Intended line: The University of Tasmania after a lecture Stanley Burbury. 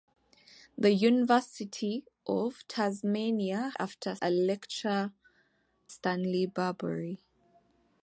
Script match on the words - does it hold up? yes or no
yes